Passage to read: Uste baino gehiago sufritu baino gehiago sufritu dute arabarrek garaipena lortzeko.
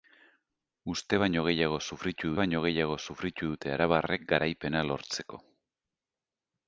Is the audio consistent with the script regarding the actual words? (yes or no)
yes